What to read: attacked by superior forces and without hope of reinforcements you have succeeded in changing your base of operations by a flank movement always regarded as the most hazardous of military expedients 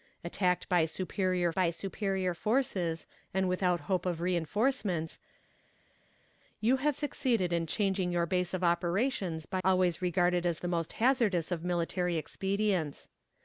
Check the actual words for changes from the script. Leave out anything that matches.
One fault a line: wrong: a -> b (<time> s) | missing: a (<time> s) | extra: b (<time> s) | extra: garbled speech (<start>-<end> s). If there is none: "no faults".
extra: by superior (1.5 s)
missing: a flank movement (9.6 s)